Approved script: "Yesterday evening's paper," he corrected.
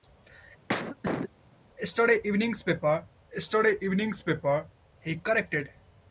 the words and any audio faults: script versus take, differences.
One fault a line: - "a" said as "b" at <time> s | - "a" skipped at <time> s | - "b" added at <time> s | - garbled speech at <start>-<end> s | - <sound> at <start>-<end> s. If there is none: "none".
- cough at 0.7-1.3 s
- "yesterday evening's paper" added at 3.3 s